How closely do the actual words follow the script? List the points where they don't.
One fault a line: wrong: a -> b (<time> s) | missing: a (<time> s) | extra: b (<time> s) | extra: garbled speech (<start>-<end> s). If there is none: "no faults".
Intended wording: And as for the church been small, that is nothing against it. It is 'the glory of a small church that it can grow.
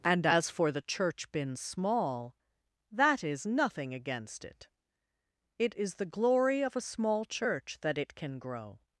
no faults